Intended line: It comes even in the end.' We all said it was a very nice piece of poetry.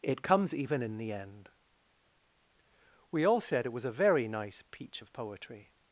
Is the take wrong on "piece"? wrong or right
wrong